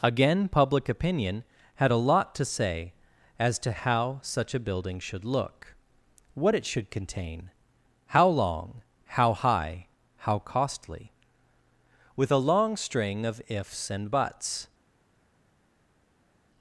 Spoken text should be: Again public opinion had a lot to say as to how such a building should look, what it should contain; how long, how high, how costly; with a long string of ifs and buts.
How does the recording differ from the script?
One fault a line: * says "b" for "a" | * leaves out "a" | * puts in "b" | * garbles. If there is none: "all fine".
all fine